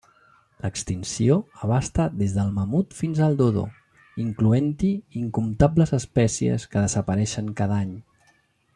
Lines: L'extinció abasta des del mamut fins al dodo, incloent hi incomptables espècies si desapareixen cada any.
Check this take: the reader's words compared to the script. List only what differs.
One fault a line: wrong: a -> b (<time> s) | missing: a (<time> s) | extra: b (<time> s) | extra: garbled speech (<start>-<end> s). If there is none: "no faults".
wrong: si -> que (6.7 s)